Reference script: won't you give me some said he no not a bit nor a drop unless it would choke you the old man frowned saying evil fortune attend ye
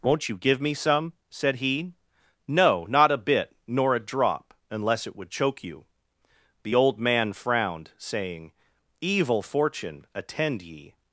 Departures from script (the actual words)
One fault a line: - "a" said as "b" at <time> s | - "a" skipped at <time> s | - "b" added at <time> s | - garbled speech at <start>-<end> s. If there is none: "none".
none